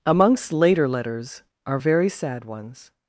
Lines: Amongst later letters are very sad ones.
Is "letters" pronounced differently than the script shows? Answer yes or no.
no